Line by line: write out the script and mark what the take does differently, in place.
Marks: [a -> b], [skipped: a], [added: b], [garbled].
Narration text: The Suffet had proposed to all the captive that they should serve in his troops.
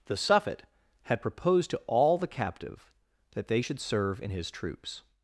The Suffet had proposed to all the captive that they should serve in his troops.